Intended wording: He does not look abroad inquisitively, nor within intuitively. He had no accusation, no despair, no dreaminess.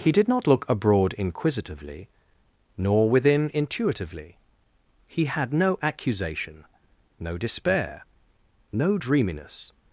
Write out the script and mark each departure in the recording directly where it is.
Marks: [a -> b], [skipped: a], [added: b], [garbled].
He [does -> did] not look abroad inquisitively, nor within intuitively. He had no accusation, no despair, no dreaminess.